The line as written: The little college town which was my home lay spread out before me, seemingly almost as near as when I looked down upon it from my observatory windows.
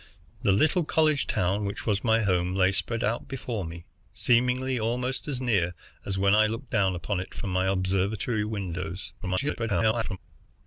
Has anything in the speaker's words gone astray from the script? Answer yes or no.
yes